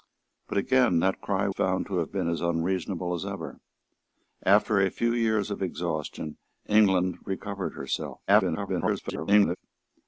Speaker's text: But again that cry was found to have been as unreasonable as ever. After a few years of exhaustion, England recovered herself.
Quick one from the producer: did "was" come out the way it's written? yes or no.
no